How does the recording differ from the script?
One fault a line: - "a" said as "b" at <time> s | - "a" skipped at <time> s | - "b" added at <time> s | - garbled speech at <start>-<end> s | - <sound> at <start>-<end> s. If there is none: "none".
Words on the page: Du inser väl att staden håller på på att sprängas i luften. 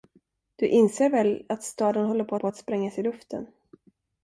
none